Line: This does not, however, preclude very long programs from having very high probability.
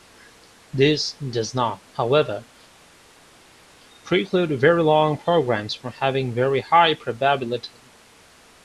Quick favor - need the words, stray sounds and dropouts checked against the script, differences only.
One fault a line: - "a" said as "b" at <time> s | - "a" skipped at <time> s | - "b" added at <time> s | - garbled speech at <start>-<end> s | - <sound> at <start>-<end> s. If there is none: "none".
none